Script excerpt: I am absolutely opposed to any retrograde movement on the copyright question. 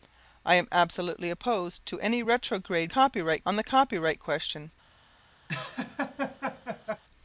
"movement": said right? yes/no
no